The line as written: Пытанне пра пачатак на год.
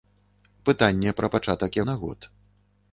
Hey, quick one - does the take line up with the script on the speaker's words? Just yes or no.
yes